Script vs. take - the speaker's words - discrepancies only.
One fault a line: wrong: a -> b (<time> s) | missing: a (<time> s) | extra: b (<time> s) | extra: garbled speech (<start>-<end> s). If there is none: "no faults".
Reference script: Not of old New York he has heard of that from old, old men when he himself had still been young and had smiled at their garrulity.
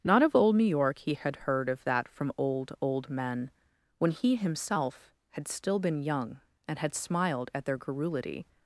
wrong: has -> had (1.1 s)